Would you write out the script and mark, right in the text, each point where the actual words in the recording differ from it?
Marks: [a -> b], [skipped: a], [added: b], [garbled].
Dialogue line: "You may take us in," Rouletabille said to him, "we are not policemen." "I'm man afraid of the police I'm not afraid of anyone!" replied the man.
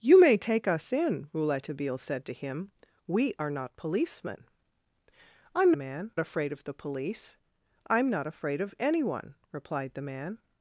"You may take us in," Rouletabille said to him, "we are not policemen." "I'm man afraid of the police I'm not afraid of anyone!" replied the man.